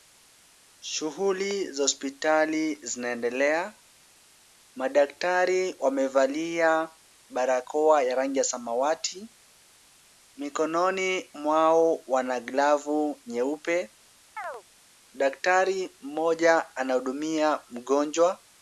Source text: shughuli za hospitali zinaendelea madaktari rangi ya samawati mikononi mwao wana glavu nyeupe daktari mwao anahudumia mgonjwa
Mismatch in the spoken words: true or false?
true